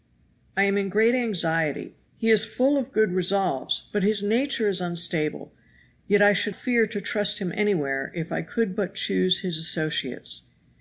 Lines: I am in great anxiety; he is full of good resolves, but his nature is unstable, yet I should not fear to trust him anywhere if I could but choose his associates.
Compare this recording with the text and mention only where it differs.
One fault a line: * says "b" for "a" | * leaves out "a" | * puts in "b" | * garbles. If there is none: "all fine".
* leaves out "not"